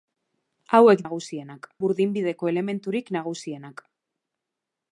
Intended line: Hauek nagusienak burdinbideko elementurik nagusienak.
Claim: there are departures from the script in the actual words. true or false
false